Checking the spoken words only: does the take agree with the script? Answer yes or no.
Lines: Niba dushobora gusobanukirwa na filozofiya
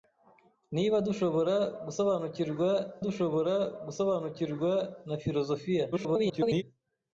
no